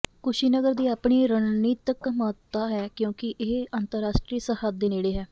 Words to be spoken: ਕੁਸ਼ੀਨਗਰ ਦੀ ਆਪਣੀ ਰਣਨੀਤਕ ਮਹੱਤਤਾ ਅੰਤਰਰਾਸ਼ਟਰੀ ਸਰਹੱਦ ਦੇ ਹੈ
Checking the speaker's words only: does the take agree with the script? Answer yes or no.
no